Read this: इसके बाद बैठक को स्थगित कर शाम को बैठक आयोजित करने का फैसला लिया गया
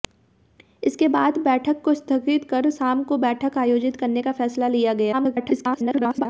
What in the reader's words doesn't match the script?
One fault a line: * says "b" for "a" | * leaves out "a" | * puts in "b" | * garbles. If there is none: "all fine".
* garbles